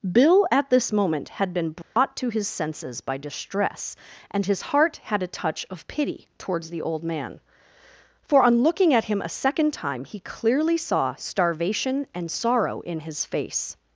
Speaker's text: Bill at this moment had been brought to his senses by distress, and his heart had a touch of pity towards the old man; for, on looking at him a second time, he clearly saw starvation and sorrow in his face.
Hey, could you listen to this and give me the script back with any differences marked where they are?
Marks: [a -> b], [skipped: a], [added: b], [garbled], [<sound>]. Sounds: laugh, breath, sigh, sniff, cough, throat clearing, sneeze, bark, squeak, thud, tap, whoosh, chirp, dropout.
Bill at this moment had been brought [dropout] to his senses by distress, and his heart had a touch of pity towards the old man; for, on looking at him a second time, he clearly saw starvation and sorrow in his face.